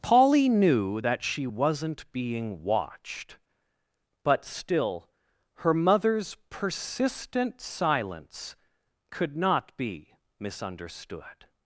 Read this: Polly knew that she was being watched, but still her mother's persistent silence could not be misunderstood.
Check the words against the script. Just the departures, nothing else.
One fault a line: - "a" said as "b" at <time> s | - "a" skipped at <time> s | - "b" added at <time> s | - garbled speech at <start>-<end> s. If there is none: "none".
- "was" said as "wasn't" at 1.4 s